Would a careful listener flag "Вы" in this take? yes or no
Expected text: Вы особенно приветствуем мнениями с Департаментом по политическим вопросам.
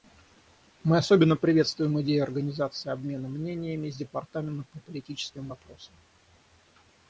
yes